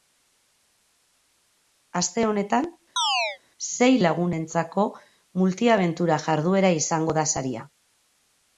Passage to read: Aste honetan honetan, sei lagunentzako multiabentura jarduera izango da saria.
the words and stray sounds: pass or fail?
fail